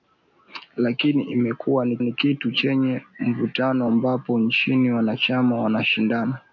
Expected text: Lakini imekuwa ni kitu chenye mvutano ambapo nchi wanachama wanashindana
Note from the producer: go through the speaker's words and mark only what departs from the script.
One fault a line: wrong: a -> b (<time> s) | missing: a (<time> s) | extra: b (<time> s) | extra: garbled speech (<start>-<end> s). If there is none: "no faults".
extra: ni (2.0 s)